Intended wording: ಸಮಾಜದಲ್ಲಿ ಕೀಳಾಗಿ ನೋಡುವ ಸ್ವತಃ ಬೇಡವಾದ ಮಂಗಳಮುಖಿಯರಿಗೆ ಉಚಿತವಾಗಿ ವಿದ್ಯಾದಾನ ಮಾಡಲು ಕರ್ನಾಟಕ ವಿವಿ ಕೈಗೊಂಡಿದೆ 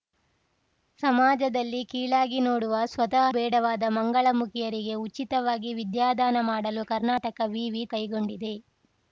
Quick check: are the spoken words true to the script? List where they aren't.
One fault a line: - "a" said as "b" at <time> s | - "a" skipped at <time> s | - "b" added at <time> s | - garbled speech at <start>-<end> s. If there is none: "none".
none